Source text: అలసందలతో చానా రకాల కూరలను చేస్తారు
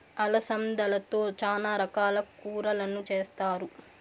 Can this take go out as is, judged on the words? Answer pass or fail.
pass